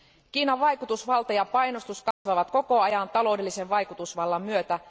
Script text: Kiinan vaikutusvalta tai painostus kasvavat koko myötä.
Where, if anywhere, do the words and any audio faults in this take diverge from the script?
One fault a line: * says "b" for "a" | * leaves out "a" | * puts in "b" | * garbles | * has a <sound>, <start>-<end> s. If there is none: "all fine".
* says "ja" for "tai"
* has a dropout, 2.1-2.3 s
* puts in "ajan taloudellisen vaikutusvallan"